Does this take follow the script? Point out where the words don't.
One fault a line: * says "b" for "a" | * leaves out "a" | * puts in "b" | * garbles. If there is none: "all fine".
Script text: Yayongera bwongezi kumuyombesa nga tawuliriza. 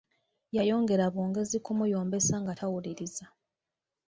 all fine